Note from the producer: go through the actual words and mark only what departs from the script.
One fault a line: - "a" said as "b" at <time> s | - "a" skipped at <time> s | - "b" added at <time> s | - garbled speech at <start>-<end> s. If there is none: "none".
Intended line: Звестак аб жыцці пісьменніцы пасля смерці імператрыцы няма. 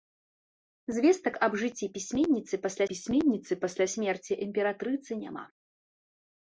- "пісьменніцы пасля" added at 2.9 s